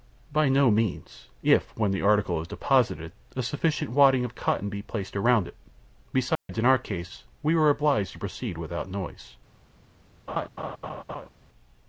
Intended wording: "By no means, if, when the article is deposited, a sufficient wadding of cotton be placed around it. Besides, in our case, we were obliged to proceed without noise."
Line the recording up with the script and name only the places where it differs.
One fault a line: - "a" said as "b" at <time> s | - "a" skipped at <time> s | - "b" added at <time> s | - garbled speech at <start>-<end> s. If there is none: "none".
none